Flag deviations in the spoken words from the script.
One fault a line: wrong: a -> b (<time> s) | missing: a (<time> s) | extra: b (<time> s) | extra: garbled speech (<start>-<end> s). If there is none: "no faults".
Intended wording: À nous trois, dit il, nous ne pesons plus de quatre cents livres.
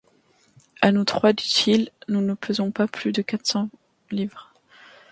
extra: pas (2.7 s)